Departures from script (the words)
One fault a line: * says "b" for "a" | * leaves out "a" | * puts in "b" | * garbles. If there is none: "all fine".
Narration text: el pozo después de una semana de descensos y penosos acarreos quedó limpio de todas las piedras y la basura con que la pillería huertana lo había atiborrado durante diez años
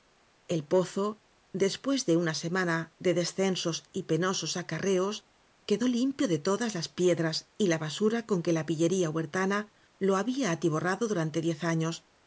all fine